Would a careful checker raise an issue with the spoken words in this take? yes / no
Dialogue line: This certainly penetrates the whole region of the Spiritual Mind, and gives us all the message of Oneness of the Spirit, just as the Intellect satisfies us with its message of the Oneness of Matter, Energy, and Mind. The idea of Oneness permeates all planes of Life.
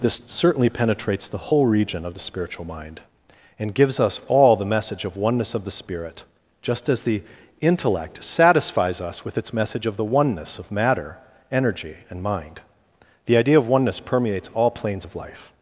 no